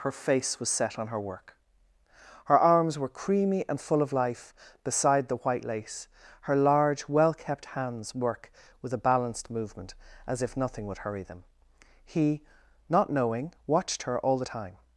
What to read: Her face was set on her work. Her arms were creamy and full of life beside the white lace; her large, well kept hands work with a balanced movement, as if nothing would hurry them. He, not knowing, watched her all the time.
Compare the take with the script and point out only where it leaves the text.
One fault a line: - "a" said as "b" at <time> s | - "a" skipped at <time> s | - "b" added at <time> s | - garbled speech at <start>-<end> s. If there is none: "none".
none